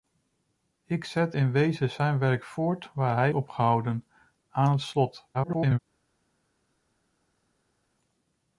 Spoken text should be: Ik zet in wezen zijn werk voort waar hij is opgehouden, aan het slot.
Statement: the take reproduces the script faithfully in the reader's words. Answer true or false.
false